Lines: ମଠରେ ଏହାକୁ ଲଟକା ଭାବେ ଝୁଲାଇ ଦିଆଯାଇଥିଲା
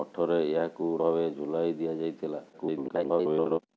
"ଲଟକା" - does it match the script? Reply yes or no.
no